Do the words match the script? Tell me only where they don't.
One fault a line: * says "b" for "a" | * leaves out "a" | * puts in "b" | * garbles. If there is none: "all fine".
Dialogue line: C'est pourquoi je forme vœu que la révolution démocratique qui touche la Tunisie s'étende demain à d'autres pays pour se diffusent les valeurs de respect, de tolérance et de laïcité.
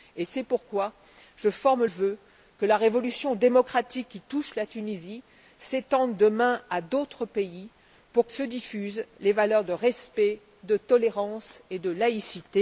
all fine